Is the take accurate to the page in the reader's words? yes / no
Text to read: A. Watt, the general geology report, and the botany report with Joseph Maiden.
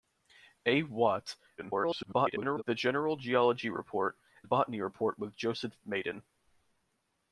no